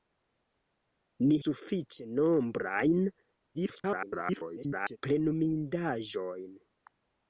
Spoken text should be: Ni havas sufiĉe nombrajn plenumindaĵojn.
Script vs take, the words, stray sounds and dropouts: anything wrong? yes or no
yes